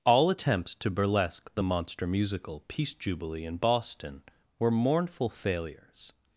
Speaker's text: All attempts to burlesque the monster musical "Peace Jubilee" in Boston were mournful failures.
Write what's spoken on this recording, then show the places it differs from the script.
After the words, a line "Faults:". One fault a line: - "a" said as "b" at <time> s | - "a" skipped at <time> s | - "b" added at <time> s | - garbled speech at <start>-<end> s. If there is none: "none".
All attempts to burlesque the monster musical "Peace Jubilee" in Boston were mournful failures.
Faults:
none